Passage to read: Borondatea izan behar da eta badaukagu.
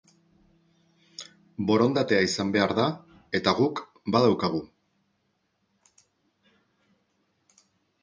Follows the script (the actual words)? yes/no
no